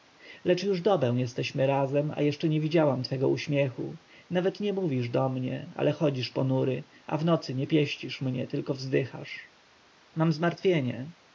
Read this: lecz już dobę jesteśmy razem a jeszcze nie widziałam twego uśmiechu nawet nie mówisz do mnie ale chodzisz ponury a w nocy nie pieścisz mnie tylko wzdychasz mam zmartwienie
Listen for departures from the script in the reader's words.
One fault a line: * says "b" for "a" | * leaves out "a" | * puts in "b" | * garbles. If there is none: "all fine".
all fine